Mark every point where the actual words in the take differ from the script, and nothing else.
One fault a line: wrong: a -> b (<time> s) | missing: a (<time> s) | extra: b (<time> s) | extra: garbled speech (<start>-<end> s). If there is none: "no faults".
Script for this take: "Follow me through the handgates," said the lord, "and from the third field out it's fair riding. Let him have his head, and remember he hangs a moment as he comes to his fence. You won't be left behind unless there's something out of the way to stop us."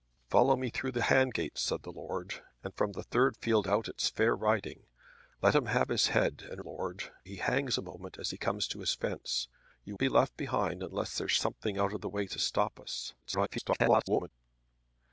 wrong: remember -> lord (6.6 s)
missing: won't (10.0 s)
extra: garbled speech (13.2-14.3 s)